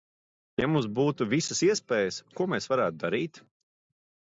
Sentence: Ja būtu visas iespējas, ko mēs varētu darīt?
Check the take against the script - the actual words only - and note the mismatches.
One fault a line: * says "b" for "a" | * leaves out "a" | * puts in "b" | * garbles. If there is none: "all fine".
* puts in "mums"